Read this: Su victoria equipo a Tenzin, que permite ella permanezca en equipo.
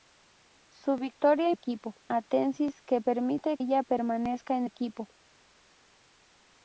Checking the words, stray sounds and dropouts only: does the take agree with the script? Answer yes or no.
yes